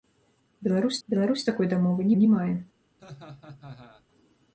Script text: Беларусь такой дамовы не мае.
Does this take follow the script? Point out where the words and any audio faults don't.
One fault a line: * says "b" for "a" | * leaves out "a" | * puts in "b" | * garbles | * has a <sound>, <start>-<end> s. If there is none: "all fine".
* puts in "беларусь"
* puts in "не"
* has a laugh, 3.0-4.1 s